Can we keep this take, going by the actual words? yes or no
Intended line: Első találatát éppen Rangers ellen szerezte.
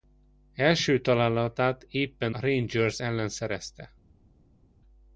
yes